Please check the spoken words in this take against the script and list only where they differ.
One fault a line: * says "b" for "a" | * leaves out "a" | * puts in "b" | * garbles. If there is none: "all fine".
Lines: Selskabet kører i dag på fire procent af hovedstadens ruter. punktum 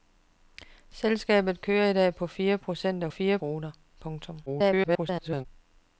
* says "fire" for "hovedstadens"
* garbles